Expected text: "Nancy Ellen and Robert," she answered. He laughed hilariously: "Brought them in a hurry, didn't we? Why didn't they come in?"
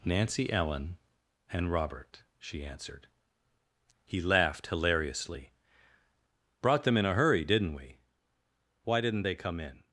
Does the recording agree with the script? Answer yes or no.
yes